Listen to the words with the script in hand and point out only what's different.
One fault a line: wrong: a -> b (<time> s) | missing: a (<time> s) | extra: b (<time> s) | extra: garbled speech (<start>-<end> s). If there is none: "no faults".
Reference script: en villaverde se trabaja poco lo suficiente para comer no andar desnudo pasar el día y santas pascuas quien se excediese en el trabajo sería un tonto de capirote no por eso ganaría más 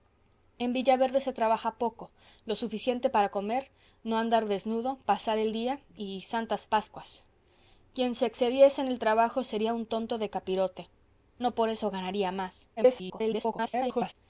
extra: garbled speech (12.8-14.1 s)